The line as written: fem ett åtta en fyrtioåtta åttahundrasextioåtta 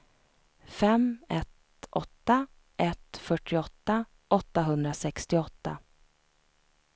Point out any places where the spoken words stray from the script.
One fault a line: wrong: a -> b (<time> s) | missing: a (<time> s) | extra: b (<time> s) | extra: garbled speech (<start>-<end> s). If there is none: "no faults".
wrong: en -> ett (2.8 s)